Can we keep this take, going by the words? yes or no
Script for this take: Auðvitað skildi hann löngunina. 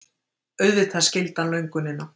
yes